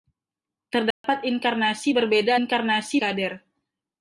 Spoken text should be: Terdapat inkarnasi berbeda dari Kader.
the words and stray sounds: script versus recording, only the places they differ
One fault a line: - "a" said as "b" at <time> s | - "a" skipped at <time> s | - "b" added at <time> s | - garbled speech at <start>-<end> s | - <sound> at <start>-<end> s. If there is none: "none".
- dropout at 0.9-1.0 s
- "dari" said as "inkarnasi" at 2.4 s